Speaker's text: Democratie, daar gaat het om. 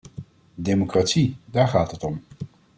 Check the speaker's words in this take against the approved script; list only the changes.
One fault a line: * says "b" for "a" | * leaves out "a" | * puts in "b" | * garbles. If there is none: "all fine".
all fine